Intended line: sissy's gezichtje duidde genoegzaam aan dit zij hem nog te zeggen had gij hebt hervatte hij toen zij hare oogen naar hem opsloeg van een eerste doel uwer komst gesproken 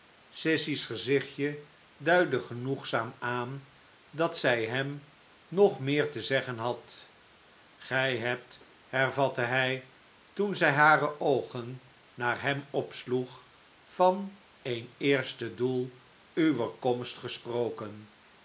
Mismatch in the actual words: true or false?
true